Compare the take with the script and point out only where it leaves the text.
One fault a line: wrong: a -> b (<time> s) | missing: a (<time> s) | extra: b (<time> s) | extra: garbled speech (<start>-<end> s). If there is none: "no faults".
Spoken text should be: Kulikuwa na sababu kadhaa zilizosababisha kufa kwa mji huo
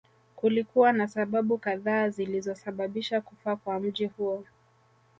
no faults